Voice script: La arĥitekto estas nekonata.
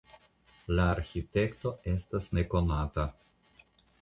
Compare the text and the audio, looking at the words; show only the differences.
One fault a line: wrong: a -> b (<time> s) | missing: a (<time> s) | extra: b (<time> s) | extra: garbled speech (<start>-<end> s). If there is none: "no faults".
no faults